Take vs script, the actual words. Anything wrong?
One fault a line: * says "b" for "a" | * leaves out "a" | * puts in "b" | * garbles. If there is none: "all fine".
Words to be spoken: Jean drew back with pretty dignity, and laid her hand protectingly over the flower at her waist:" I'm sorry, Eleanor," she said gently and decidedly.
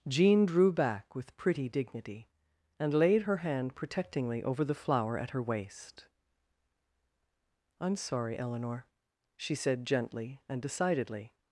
all fine